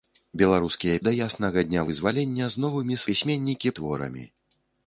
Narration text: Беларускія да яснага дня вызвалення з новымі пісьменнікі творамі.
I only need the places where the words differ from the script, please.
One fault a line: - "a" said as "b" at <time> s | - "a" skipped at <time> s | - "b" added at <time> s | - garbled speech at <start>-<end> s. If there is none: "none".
none